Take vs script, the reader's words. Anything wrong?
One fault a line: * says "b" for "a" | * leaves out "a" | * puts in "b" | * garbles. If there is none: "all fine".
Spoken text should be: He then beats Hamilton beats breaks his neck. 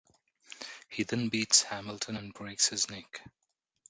* says "and" for "beats"